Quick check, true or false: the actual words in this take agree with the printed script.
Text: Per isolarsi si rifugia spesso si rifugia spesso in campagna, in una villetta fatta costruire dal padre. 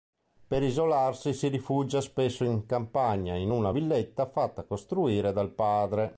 false